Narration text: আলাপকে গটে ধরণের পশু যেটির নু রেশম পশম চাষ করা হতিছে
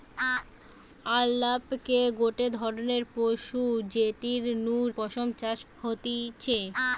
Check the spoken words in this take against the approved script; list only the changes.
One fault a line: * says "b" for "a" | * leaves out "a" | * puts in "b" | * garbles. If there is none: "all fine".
* leaves out "রেশম"
* leaves out "করা"